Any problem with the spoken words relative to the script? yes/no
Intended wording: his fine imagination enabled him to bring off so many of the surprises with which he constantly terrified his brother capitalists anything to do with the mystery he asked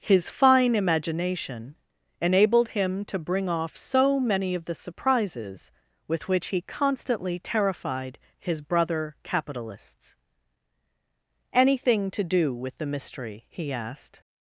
no